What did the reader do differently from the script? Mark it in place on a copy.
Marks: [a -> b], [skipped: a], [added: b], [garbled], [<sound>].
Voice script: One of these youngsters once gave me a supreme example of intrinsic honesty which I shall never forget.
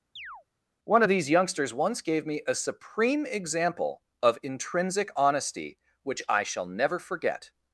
[chirp] One of these youngsters once gave me a supreme example of intrinsic honesty which I shall never forget.